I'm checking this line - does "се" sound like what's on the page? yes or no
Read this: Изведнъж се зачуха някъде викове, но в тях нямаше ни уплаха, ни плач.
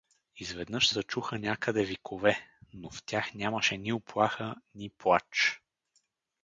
no